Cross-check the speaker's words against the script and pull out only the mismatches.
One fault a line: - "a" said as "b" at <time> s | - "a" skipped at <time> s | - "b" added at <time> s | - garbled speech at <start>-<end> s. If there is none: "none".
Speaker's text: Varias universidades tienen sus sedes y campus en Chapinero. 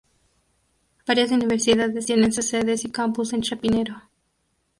none